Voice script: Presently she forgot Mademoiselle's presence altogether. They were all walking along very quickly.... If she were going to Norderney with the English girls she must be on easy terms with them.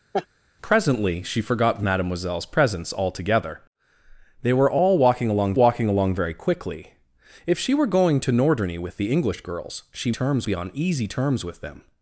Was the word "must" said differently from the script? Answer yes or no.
yes